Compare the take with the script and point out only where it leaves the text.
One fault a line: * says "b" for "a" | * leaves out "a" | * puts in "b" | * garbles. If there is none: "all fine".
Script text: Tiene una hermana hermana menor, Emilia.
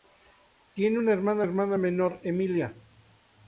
all fine